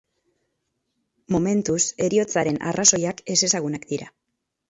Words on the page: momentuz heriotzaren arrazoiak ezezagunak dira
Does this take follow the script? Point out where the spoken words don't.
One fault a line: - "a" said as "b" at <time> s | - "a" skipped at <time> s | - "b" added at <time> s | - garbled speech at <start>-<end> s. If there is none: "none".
none